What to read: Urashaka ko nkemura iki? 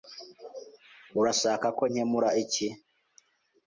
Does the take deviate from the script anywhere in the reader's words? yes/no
no